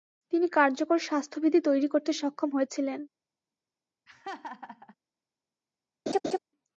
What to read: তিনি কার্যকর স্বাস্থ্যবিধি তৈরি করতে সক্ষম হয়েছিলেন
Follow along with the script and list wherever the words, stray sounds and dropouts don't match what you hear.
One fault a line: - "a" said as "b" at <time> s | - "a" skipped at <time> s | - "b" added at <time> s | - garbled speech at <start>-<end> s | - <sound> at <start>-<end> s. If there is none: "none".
- laugh at 4.1-4.9 s
- laugh at 6.1-6.4 s